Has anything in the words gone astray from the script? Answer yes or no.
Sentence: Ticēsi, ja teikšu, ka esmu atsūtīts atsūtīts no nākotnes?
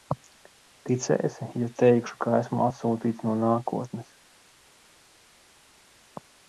yes